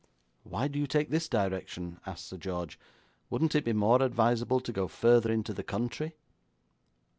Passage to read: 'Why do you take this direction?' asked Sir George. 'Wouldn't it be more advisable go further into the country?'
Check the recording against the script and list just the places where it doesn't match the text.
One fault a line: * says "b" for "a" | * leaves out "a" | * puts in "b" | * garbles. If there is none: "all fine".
* puts in "to"